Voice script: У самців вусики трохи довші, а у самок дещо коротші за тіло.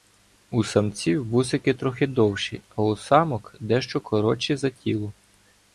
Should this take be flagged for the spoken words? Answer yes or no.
no